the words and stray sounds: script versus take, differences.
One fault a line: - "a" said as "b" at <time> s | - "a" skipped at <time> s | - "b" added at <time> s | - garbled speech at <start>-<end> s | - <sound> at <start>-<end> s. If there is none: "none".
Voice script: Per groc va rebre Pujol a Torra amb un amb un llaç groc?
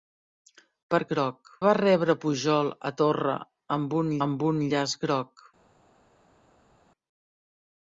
none